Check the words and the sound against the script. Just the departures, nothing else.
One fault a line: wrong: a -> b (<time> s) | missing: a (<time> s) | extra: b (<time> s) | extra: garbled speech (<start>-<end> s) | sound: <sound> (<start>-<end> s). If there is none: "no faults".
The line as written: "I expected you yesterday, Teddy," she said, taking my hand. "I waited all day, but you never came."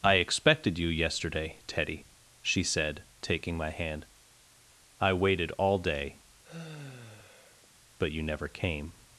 sound: sigh (6.4-7.7 s)